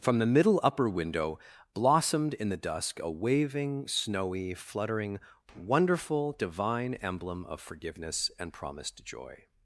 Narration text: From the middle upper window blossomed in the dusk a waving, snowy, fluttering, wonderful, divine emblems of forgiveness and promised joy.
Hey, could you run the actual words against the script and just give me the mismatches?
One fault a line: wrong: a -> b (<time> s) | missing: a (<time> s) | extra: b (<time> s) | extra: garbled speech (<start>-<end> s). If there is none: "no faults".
wrong: emblems -> emblem (7.0 s)